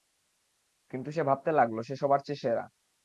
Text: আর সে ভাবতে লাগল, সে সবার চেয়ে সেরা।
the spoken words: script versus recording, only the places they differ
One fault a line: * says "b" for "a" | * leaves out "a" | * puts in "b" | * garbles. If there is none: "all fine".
* says "কিন্তু" for "আর"